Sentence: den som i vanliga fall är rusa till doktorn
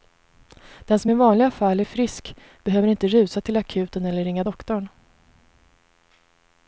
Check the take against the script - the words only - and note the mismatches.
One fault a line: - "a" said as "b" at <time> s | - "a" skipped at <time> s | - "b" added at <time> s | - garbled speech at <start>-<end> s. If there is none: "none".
- "frisk behöver inte" added at 1.8 s
- "akuten eller ringa" added at 3.6 s